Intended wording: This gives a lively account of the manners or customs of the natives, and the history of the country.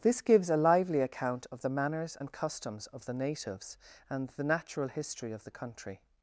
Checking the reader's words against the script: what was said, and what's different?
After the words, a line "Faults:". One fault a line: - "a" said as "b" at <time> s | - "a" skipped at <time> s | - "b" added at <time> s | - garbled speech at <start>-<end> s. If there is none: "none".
This gives a lively account of the manners and customs of the natives, and the natural history of the country.
Faults:
- "or" said as "and" at 2.2 s
- "natural" added at 4.4 s